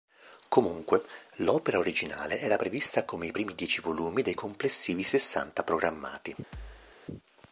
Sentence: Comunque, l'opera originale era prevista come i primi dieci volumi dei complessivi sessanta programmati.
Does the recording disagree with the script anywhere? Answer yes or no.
no